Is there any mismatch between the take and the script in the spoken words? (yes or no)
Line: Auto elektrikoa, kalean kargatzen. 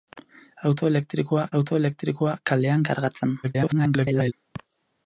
yes